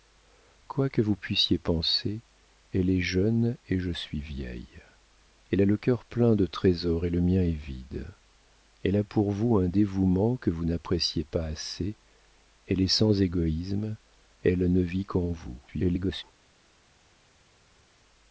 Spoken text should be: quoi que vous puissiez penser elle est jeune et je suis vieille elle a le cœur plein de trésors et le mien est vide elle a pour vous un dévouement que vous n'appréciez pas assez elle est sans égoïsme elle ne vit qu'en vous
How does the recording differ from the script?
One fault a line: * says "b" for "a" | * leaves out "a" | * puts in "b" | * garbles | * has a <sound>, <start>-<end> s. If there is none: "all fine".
* garbles